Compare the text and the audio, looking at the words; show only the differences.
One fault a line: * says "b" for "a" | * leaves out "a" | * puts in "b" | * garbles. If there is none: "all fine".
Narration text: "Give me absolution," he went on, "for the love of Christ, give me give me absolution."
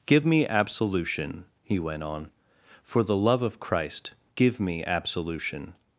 * leaves out "give me"